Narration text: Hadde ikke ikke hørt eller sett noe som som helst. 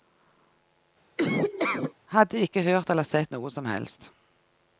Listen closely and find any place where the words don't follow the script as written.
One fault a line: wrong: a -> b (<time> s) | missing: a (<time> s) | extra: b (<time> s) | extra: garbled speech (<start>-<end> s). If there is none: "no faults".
missing: ikke (2.6 s)
missing: som (3.7 s)